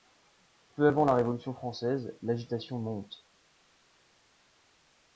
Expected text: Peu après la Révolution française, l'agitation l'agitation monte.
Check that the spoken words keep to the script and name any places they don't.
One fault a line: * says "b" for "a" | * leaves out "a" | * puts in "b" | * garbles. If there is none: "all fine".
* says "avant" for "après"
* leaves out "l'agitation"